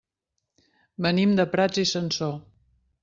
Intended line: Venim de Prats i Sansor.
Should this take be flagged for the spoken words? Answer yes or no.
no